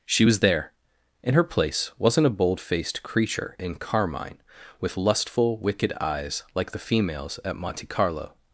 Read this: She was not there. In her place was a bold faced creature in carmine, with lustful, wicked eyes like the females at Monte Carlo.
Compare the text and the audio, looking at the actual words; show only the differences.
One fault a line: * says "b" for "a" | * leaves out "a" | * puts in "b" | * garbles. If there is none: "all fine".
* leaves out "not"
* says "wasn't" for "was"